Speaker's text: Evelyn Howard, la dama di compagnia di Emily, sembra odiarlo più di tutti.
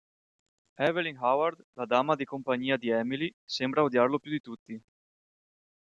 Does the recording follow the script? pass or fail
pass